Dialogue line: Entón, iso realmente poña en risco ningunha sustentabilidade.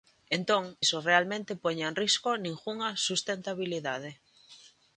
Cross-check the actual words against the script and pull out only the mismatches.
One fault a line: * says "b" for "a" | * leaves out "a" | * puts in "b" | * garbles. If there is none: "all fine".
all fine